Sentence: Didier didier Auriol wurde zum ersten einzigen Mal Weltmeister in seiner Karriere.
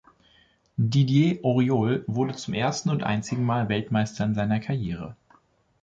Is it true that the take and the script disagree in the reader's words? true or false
true